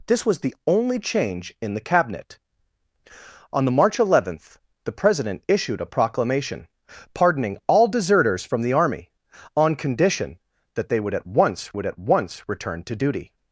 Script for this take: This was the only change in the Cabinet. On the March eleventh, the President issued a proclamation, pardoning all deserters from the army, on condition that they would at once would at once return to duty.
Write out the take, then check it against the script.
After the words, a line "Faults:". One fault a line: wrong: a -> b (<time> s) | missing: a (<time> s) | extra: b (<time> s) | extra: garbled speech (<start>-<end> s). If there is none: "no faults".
This was the only change in the Cabinet. On the March eleventh, the President issued a proclamation, pardoning all deserters from the army, on condition that they would at once would at once return to duty.
Faults:
no faults